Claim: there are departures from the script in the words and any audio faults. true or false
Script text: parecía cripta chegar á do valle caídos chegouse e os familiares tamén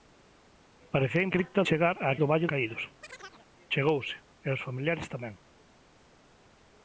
true